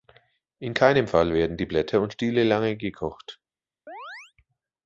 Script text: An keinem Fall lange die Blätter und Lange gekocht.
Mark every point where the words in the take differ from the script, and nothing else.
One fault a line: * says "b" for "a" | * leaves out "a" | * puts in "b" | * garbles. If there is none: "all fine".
* says "In" for "An"
* says "werden" for "lange"
* puts in "Stiele"